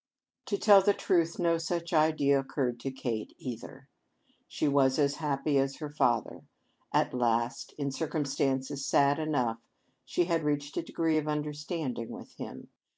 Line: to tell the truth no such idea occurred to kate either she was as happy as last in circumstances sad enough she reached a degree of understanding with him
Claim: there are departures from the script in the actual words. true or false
true